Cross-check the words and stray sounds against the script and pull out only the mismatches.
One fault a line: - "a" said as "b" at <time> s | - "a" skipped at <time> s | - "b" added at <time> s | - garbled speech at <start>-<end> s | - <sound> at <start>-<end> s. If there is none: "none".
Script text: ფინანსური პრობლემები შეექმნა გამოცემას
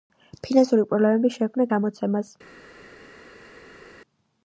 none